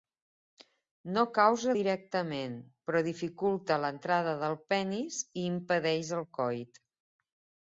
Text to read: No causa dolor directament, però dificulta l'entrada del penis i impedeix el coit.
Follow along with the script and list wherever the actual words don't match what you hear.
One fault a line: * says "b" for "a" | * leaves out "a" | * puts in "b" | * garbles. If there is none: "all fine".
* leaves out "dolor"